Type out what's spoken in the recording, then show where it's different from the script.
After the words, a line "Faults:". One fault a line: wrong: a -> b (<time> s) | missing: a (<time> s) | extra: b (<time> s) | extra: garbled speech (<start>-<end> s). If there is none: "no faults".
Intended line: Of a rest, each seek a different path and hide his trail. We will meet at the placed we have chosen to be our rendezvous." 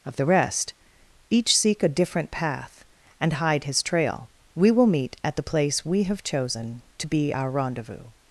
Of the rest, each seek a different path and hide his trail. We will meet at the place we have chosen to be our rendezvous."
Faults:
wrong: a -> the (0.1 s)
wrong: placed -> place (5.4 s)